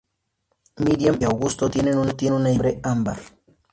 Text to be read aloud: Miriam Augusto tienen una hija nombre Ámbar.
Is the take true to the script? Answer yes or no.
yes